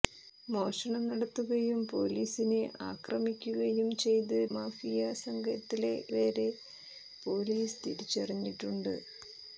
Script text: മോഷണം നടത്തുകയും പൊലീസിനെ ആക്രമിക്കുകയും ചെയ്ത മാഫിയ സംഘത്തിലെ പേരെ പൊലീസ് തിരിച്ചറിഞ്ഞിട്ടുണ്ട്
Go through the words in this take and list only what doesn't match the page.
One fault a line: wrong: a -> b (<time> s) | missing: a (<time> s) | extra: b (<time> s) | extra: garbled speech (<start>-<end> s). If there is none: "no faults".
no faults